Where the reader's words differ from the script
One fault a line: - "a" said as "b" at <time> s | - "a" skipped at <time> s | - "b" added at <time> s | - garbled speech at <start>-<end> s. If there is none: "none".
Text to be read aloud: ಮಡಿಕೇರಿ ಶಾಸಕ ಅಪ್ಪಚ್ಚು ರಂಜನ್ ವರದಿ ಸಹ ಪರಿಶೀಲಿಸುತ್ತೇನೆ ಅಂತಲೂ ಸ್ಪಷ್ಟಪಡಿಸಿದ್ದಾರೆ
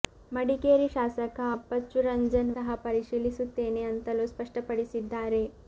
- "ವರದಿ" skipped at 2.5 s